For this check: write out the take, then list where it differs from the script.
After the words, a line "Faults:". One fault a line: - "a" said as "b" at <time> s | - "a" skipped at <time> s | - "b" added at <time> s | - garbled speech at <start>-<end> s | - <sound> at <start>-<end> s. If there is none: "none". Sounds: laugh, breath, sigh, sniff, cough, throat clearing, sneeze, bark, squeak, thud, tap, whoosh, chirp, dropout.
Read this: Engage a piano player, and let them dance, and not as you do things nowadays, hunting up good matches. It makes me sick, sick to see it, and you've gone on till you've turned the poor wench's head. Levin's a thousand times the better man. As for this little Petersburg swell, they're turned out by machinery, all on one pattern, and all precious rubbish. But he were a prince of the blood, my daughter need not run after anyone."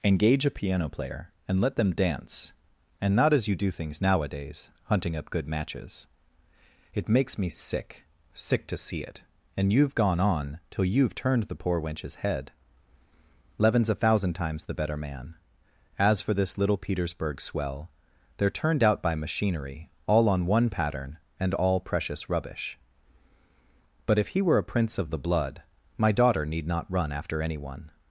Engage a piano player, and let them dance, and not as you do things nowadays, hunting up good matches. It makes me sick, sick to see it, and you've gone on till you've turned the poor wench's head. Levin's a thousand times the better man. As for this little Petersburg swell, they're turned out by machinery, all on one pattern, and all precious rubbish. But if he were a prince of the blood, my daughter need not run after anyone."
Faults:
- "if" added at 24.2 s